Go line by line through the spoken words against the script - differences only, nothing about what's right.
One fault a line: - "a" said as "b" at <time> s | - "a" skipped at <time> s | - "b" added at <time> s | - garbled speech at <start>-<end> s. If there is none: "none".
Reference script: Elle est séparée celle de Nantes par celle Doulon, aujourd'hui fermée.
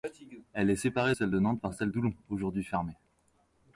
none